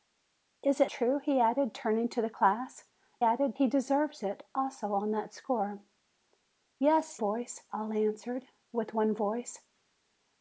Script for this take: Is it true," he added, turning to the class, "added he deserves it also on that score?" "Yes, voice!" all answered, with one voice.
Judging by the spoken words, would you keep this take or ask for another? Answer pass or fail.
pass